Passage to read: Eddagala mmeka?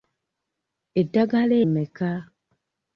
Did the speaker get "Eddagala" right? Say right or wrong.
right